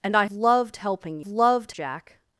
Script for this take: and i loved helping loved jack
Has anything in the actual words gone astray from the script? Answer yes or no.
no